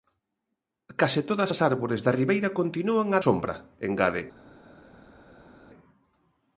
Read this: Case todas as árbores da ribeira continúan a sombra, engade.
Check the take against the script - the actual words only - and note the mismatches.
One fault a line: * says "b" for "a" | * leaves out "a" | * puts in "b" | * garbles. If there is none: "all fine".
all fine